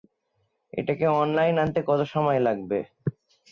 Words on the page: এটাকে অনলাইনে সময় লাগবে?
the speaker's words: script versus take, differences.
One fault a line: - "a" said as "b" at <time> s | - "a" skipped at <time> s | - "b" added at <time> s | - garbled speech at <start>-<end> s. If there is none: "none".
- "আনতে কত" added at 1.6 s